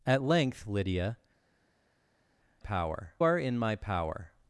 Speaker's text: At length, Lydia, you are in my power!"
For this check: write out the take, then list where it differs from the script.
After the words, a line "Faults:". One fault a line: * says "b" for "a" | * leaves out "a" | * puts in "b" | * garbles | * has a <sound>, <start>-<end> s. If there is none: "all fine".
At length, Lydia, power are in my power!"
Faults:
* says "power" for "you"